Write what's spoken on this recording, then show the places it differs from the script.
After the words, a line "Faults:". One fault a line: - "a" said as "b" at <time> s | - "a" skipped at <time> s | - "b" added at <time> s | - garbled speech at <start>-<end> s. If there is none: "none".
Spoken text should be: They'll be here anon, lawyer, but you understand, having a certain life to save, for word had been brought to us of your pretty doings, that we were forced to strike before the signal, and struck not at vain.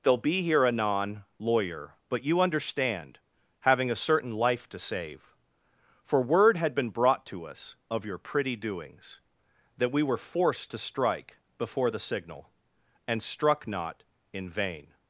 They'll be here anon, lawyer, but you understand, having a certain life to save, for word had been brought to us of your pretty doings, that we were forced to strike before the signal, and struck not in vain.
Faults:
- "at" said as "in" at 14.3 s